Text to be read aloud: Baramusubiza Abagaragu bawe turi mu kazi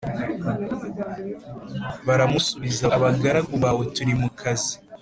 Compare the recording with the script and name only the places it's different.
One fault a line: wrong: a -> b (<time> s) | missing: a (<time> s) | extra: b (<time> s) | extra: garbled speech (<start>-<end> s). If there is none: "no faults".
no faults